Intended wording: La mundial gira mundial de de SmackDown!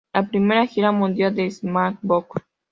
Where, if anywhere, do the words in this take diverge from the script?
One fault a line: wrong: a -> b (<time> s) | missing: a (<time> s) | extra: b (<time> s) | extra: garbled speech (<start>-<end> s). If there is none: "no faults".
wrong: mundial -> primera (0.3 s)
missing: de (1.5 s)